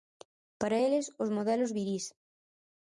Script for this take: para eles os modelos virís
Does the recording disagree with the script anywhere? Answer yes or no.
no